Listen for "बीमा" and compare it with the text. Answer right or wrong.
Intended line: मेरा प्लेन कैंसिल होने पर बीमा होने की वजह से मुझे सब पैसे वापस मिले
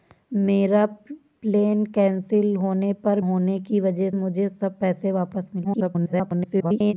wrong